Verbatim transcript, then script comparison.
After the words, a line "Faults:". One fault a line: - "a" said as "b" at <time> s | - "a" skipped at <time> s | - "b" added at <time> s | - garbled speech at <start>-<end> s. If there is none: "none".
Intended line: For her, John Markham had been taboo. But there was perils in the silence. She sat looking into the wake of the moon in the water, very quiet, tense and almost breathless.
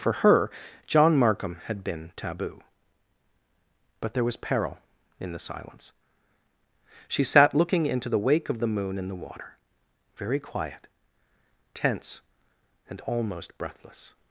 For her, John Markham had been taboo. But there was peril in the silence. She sat looking into the wake of the moon in the water, very quiet, tense and almost breathless.
Faults:
- "perils" said as "peril" at 4.3 s